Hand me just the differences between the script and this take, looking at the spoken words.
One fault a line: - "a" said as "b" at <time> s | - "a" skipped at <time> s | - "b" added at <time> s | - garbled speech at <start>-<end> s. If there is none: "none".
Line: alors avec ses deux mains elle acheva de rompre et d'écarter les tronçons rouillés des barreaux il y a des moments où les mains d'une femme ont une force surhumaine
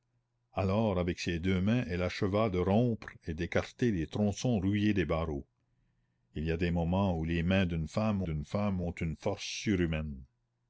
- "d'une femme" added at 8.2 s